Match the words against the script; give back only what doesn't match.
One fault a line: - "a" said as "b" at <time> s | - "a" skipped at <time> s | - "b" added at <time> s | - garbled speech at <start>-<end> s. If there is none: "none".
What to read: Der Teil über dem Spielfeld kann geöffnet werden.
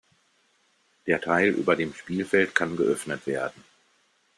none